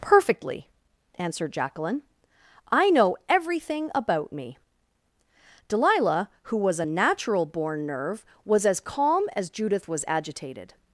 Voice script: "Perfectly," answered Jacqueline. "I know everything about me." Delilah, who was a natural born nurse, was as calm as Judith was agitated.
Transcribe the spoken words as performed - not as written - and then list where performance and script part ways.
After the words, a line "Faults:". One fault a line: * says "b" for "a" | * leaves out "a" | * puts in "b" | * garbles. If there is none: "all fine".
"Perfectly," answered Jacqueline. "I know everything about me." Delilah, who was a natural born nerve, was as calm as Judith was agitated.
Faults:
* says "nerve" for "nurse"